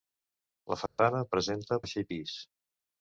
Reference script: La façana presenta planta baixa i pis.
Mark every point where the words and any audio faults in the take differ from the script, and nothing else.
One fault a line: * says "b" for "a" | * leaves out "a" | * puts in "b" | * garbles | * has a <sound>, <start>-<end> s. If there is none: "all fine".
* has a dropout, 0.9-1.0 s
* leaves out "planta"